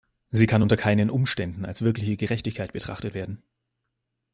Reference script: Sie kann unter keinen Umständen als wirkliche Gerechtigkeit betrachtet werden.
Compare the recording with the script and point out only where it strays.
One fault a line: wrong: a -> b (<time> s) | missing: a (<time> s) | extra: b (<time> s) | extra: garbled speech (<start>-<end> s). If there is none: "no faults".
no faults